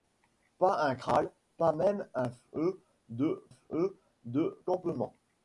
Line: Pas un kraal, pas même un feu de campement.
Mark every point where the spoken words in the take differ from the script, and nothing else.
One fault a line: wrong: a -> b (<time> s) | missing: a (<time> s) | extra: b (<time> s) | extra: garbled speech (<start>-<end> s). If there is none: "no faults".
extra: feu de (3.5 s)